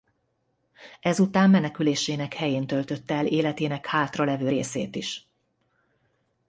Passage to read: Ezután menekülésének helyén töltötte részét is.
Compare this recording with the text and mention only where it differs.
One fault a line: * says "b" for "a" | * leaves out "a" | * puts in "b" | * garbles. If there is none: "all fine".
* puts in "el életének hátralevő"